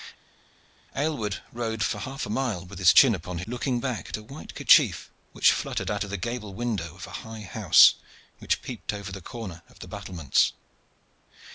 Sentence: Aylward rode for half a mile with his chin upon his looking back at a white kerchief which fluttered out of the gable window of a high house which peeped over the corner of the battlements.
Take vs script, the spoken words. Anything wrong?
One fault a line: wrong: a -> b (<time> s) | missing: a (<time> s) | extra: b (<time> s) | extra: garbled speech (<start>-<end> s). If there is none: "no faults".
no faults